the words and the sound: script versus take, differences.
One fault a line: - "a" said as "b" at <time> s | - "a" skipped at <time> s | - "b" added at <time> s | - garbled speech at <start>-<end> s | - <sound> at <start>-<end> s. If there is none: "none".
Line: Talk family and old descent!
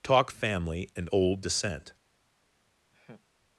- laugh at 2.9-3.3 s